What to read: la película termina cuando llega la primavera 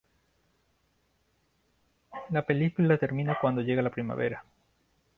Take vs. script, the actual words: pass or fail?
pass